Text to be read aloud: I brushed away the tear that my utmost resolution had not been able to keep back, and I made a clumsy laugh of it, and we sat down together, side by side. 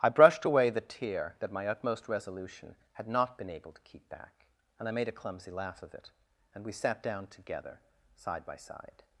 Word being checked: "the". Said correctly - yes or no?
yes